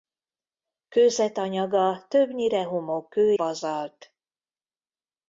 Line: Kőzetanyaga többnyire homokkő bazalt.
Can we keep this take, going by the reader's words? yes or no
yes